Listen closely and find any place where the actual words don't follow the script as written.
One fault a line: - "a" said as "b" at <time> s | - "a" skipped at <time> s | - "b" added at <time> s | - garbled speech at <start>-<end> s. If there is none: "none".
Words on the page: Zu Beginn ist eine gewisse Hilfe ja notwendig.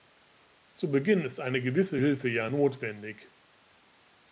none